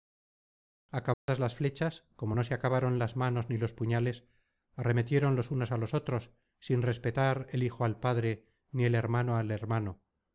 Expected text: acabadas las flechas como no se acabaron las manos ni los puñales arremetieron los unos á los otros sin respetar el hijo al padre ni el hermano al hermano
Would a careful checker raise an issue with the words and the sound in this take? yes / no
yes